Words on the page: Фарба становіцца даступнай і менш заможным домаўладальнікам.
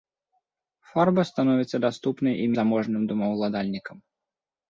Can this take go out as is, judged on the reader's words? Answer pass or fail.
fail